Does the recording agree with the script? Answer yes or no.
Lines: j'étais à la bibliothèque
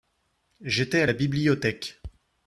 yes